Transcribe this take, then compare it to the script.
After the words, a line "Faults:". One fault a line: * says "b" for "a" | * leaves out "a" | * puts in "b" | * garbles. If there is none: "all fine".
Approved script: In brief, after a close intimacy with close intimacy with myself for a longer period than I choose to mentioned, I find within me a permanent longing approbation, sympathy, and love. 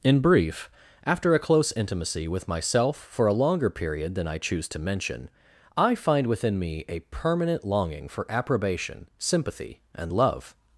In brief, after a close intimacy with myself for a longer period than I choose to mention, I find within me a permanent longing for approbation, sympathy, and love.
Faults:
* leaves out "close intimacy with"
* says "mention" for "mentioned"
* puts in "for"